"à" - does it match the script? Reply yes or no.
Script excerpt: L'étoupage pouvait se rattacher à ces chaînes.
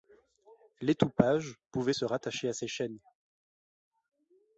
yes